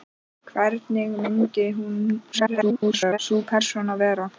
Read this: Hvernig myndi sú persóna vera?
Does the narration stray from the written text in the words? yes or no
yes